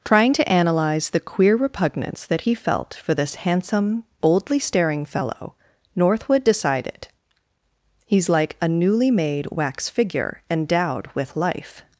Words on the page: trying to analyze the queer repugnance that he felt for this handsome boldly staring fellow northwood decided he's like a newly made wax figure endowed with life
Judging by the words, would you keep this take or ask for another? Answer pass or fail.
pass